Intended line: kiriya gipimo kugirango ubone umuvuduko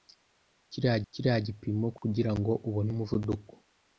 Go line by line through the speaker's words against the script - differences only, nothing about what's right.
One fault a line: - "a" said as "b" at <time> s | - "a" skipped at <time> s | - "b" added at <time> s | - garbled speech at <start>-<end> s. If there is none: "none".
- "kiriya" added at 1.1 s